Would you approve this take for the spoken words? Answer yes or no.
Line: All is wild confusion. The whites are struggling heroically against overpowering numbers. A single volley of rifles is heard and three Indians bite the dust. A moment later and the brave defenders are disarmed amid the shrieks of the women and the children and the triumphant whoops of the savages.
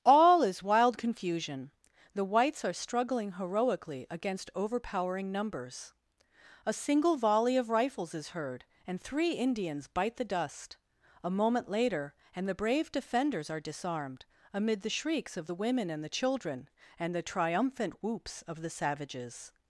yes